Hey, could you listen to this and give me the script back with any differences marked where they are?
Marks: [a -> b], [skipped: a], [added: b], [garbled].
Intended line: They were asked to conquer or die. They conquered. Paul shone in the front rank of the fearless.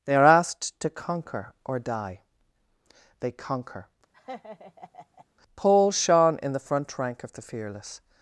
They [were -> are] asked to conquer or die. They [conquered. -> conquer] Paul shone in the front rank of the fearless.